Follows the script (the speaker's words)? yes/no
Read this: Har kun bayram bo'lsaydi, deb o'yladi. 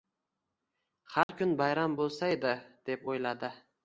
yes